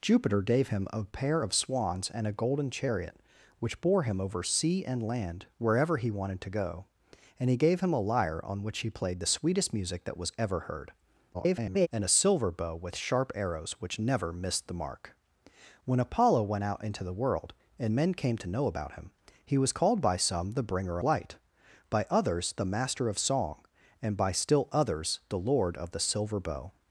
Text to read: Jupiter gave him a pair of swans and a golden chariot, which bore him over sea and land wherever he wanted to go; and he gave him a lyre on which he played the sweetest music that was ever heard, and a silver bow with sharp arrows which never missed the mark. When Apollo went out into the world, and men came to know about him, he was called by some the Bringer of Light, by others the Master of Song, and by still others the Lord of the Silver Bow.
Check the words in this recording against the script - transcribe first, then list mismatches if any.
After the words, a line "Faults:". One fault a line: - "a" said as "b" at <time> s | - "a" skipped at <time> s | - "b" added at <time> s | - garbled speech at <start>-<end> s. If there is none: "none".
Jupiter gave him a pair of swans and a golden chariot, which bore him over sea and land wherever he wanted to go; and he gave him a lyre on which he played the sweetest music that was ever heard, [garbled] and a silver bow with sharp arrows which never missed the mark. When Apollo went out into the world, and men came to know about him, he was called by some the Bringer Light, by others the Master of Song, and by still others the Lord of the Silver Bow.
Faults:
- garbled speech at 11.3-11.9 s
- "of" skipped at 21.0 s